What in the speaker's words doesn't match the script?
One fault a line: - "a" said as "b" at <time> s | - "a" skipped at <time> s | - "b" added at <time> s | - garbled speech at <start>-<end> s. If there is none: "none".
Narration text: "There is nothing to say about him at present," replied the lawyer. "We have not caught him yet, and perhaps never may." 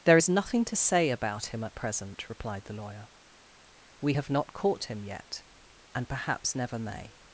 none